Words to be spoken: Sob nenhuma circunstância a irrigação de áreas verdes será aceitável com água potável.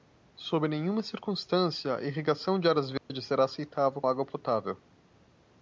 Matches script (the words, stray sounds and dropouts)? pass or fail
fail